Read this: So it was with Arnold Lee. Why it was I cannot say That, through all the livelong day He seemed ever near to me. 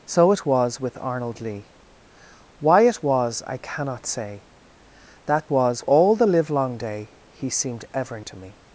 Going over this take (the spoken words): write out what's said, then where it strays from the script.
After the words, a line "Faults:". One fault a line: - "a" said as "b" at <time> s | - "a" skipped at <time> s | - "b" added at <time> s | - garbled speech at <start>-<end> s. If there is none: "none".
So it was with Arnold Lee. Why it was I cannot say That, was all the livelong day He seemed ever to me.
Faults:
- "through" said as "was" at 5.5 s
- "near" skipped at 8.2 s